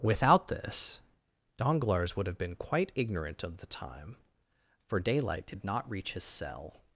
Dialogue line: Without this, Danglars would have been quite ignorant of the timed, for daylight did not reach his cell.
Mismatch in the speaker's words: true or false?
true